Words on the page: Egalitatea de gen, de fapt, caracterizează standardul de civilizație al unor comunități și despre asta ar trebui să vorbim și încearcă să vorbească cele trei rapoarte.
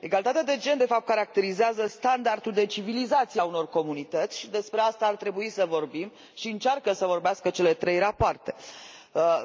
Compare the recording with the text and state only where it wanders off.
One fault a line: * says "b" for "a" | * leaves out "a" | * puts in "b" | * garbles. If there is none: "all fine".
all fine